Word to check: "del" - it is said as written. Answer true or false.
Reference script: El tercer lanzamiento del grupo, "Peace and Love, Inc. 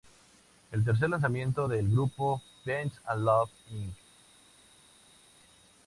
true